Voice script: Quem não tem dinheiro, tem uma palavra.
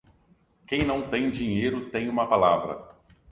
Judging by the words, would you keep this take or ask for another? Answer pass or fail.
pass